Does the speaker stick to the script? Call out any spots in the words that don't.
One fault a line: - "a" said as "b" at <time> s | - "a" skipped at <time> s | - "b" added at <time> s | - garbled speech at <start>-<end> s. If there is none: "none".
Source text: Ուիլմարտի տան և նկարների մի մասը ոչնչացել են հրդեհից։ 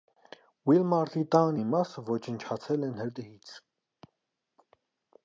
- "և նկարների" skipped at 1.6 s